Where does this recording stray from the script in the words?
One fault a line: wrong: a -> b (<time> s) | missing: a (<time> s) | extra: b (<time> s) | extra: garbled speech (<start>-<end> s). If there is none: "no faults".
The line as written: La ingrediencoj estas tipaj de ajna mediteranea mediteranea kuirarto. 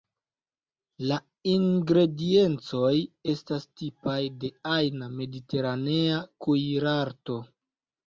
missing: mediteranea (6.2 s)